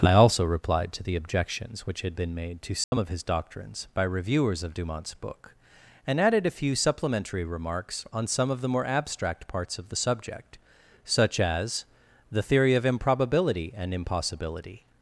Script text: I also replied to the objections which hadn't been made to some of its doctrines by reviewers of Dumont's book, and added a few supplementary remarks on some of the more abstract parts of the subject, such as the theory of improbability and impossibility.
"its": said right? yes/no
no